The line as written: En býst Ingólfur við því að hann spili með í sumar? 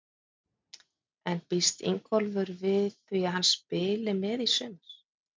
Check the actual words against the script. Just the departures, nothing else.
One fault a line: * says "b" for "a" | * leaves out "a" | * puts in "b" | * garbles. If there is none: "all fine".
all fine